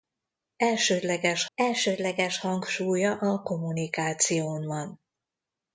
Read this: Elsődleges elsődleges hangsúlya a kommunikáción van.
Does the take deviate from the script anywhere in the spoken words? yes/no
no